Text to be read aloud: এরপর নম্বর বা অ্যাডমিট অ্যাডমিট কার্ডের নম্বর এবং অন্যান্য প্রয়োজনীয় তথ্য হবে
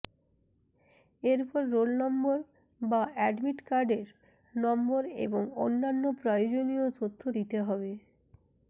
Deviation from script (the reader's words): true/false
true